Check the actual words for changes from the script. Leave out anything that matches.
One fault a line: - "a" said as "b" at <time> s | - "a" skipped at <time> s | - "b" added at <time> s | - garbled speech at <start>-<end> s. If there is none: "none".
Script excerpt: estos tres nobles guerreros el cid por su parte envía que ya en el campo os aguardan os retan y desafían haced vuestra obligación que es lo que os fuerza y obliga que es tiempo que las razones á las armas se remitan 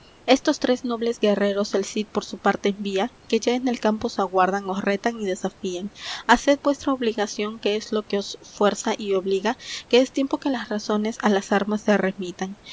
none